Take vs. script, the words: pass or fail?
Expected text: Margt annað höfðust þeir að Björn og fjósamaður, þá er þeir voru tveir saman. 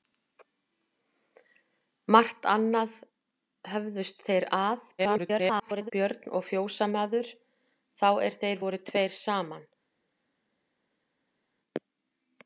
fail